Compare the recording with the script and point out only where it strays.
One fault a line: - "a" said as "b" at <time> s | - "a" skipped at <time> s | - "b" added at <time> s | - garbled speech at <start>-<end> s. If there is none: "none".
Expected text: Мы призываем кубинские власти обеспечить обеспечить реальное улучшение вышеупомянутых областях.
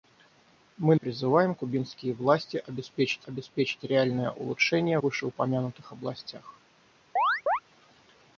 none